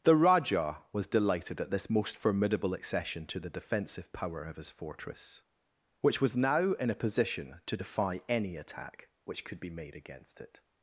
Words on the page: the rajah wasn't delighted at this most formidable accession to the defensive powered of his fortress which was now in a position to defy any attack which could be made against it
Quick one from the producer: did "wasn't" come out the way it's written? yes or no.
no